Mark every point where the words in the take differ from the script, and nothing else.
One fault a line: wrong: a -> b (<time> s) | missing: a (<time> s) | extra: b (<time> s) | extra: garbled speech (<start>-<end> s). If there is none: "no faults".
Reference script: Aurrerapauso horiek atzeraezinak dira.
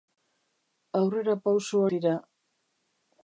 missing: horiek atzeraezinak (1.8 s)